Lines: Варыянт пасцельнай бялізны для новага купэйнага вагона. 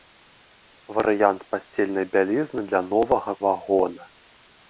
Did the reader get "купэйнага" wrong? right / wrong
wrong